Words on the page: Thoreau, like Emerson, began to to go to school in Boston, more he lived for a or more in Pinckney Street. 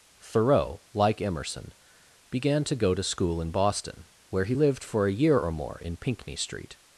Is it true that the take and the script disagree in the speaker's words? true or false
true